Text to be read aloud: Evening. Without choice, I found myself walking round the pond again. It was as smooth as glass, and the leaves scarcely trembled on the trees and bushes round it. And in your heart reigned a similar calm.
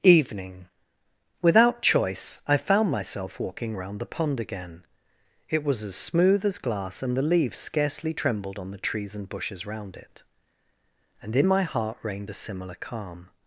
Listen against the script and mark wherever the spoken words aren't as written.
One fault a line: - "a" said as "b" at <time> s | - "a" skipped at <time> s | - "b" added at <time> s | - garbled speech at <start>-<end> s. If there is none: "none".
- "your" said as "my" at 11.4 s